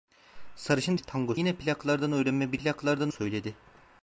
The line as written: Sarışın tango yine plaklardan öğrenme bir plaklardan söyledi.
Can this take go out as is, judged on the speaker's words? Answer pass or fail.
pass